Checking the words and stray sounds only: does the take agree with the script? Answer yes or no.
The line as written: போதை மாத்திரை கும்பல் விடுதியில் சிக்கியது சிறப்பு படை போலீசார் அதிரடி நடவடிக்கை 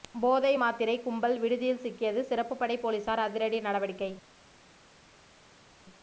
yes